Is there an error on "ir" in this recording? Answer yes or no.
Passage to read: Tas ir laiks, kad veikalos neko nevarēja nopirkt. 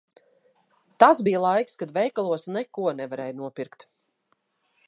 yes